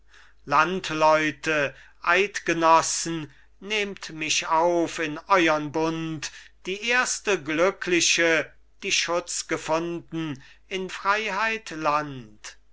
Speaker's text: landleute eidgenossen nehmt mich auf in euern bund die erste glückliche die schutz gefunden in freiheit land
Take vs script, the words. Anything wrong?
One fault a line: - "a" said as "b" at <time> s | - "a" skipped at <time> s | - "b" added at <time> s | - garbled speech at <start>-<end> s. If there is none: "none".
none